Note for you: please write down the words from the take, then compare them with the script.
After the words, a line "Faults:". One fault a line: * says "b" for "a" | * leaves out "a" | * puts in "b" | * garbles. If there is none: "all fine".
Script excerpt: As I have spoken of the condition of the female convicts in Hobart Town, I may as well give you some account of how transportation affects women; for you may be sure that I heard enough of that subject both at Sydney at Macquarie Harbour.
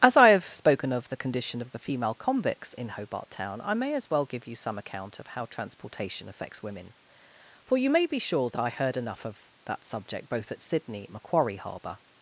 As I have spoken of the condition of the female convicts in Hobart Town, I may as well give you some account of how transportation affects women; for you may be sure that I heard enough of that subject both at Sydney at Macquarie Harbour.
Faults:
all fine